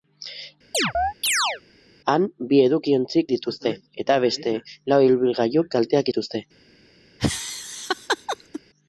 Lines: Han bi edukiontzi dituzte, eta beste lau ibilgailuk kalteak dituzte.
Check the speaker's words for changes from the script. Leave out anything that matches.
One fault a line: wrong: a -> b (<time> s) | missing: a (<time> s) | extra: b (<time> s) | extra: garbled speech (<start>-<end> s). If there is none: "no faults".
no faults